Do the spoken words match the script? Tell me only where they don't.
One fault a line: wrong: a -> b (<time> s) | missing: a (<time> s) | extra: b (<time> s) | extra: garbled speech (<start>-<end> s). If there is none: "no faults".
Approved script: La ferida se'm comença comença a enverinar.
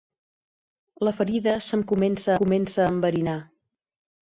no faults